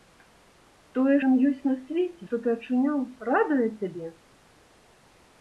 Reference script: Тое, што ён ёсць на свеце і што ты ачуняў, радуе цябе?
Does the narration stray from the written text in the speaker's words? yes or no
yes